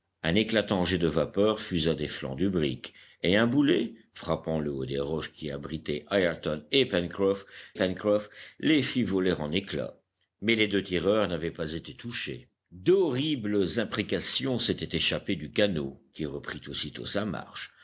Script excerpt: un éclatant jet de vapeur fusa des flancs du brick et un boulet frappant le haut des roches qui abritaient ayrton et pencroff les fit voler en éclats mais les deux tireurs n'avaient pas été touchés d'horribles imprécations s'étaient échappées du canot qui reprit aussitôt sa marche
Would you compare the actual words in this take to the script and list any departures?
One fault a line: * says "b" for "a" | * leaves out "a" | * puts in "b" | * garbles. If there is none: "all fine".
* puts in "pencroff"